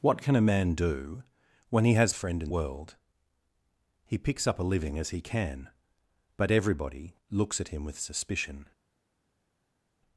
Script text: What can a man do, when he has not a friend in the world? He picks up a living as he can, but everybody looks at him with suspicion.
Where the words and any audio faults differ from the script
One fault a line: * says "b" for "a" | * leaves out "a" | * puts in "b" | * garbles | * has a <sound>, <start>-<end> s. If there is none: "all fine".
* leaves out "not"
* leaves out "the"